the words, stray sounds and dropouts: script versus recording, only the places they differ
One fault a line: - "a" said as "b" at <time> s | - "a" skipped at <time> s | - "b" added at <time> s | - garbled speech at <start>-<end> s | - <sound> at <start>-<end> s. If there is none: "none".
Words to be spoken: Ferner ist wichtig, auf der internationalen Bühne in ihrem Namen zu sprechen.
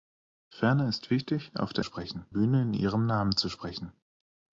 - "internationalen" said as "sprechen" at 1.8 s